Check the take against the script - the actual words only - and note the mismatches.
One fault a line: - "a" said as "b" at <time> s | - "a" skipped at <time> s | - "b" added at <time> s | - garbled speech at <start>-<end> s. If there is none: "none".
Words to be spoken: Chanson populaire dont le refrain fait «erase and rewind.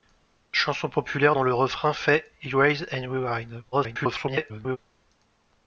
- garbled speech at 3.7-4.8 s